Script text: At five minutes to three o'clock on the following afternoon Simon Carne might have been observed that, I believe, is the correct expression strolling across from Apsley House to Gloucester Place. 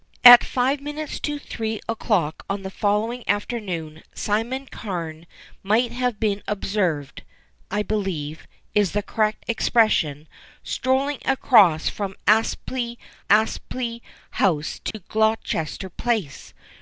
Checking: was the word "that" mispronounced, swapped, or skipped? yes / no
yes